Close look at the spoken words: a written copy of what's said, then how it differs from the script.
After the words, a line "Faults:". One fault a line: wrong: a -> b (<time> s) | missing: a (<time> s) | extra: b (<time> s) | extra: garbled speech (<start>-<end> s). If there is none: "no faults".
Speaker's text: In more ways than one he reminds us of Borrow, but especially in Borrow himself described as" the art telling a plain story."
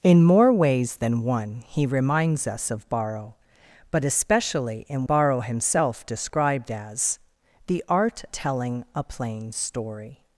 In more ways than one he reminds us of Borrow, but especially in Borrow himself described as" the art telling a plain story."
Faults:
no faults